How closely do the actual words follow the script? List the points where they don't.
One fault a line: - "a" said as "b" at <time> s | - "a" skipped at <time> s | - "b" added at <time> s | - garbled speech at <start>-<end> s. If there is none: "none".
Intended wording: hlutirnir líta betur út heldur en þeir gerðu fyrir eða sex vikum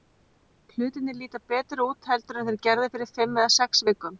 - "fimm" added at 3.2 s